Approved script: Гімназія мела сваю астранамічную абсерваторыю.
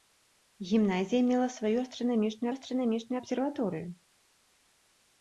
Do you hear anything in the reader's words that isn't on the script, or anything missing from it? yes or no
yes